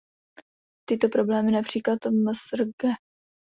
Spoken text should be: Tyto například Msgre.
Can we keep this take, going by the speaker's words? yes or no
no